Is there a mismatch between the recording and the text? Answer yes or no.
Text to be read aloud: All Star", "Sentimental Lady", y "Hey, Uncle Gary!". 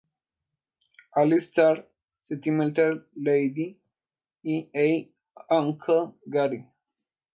no